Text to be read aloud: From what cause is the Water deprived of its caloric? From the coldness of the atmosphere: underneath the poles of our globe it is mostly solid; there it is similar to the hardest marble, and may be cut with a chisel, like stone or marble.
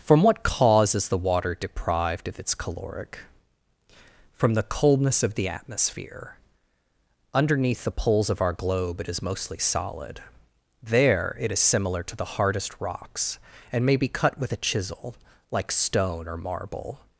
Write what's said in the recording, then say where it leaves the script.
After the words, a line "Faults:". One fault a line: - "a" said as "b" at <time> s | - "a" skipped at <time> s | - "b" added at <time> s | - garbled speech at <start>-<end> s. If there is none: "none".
From what cause is the Water deprived of its caloric? From the coldness of the atmosphere: underneath the poles of our globe it is mostly solid; there it is similar to the hardest rocks, and may be cut with a chisel, like stone or marble.
Faults:
- "marble" said as "rocks" at 12.8 s